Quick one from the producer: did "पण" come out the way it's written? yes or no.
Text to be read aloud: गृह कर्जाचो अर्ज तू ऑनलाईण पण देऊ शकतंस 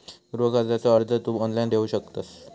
no